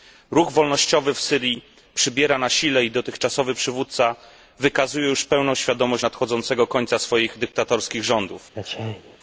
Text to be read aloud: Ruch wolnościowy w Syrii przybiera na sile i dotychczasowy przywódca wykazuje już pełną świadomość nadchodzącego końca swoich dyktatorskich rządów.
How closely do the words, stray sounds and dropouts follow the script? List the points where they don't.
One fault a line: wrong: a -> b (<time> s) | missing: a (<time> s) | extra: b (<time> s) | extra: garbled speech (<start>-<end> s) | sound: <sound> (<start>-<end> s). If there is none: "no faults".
sound: sneeze (8.5-9.2 s)